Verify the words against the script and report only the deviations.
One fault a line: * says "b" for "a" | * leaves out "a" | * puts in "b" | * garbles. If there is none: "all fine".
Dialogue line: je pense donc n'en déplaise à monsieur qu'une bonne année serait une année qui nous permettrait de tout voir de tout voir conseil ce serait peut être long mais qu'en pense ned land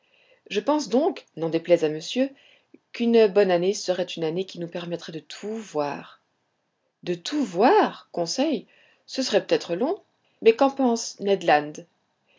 all fine